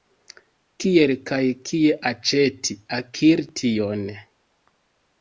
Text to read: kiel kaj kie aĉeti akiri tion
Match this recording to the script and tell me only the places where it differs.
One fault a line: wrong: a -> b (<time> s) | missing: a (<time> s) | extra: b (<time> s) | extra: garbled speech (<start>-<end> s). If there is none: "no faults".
no faults